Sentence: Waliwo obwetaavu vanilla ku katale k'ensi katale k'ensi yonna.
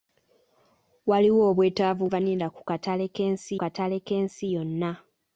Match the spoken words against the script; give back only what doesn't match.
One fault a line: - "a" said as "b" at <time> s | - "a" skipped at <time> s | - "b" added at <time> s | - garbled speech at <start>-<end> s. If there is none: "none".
none